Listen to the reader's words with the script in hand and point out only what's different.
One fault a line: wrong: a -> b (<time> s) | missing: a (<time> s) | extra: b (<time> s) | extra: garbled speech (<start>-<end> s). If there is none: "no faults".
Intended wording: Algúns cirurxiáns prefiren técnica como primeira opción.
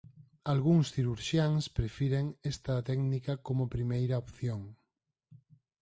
extra: esta (2.5 s)